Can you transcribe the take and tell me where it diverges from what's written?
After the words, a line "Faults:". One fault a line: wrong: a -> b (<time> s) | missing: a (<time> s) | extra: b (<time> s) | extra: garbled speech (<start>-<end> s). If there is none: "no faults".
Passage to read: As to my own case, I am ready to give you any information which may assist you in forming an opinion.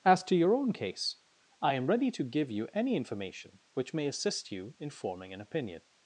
As to your own case, I am ready to give you any information which may assist you in forming an opinion.
Faults:
wrong: my -> your (0.3 s)